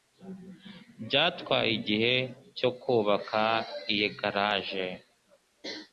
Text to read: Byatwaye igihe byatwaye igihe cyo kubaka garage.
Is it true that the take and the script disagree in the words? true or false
true